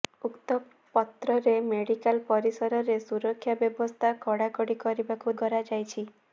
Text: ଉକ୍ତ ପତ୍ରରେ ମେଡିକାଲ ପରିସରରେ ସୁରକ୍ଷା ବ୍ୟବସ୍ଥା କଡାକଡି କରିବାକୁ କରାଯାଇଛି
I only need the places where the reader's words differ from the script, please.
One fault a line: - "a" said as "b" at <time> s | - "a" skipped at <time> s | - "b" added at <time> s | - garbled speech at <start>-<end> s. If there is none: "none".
none